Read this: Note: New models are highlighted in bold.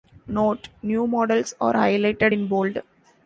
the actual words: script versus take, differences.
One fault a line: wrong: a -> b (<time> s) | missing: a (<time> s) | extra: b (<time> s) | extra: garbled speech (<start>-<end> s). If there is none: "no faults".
no faults